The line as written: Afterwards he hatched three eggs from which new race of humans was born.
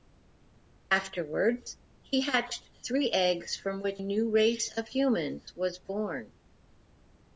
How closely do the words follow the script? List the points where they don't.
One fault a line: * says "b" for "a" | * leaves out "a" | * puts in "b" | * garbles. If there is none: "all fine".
all fine